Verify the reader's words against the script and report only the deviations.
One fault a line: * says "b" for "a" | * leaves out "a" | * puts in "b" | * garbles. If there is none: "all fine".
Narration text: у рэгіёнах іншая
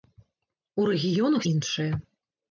all fine